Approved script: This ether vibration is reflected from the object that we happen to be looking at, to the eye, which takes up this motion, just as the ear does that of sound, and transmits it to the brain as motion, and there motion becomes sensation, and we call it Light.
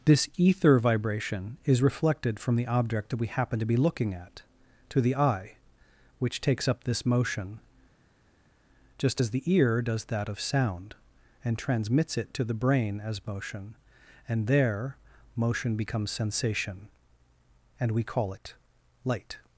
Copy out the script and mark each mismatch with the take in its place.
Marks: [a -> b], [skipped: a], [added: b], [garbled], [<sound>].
This ether vibration is reflected from the object that we happen to be looking at, to the eye, which takes up this motion, just as the ear does that of sound, and transmits it to the brain as motion, and there motion becomes sensation, and we call it Light.